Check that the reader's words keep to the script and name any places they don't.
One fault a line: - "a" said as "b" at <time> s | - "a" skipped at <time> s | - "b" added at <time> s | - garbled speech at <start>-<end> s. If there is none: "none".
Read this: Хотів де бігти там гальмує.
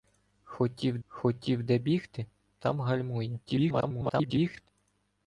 - "хотів" added at 1.1 s
- garbled speech at 3.5-4.7 s